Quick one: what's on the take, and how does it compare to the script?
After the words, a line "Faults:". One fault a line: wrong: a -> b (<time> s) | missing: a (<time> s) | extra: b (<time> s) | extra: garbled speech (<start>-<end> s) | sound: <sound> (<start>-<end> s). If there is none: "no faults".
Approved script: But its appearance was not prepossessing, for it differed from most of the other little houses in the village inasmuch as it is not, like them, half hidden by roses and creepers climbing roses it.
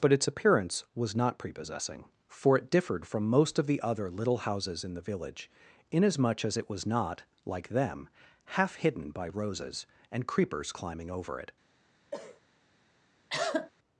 But its appearance was not prepossessing, for it differed from most of the other little houses in the village inasmuch as it was not, like them, half hidden by roses and creepers climbing over it.
Faults:
wrong: is -> was (6.7 s)
wrong: roses -> over (11.1 s)
sound: cough (12.1-12.4 s)
sound: cough (13.3-13.7 s)